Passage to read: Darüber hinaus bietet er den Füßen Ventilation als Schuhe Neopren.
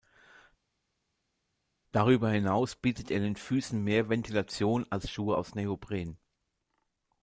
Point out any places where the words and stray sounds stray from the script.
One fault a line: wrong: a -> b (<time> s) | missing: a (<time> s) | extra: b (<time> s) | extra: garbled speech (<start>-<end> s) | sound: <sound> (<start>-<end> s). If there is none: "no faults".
extra: mehr (3.8 s)
extra: aus (5.4 s)